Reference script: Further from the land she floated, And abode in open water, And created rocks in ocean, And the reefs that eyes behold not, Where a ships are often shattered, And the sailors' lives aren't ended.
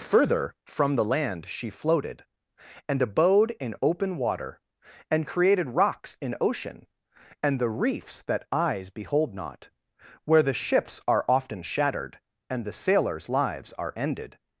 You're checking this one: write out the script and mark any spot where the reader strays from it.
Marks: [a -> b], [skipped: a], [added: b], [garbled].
Further from the land she floated, And abode in open water, And created rocks in ocean, And the reefs that eyes behold not, Where [a -> the] ships are often shattered, And the sailors' lives [aren't -> are] ended.